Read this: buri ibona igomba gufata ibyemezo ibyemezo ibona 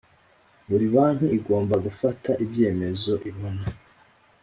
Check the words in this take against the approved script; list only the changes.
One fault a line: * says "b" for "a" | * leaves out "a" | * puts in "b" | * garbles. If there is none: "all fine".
* says "banki" for "ibona"
* leaves out "ibyemezo"